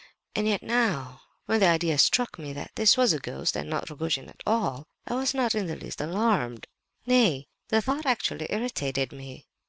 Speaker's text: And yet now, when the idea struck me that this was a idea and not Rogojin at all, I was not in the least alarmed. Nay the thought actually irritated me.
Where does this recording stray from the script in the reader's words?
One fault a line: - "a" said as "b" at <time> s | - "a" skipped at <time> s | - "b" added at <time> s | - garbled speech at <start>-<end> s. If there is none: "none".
- "idea" said as "ghost" at 3.2 s